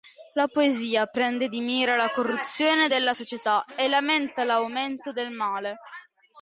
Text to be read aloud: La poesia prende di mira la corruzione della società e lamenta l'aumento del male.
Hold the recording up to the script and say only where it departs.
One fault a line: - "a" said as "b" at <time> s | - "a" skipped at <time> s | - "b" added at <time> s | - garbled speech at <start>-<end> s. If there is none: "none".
none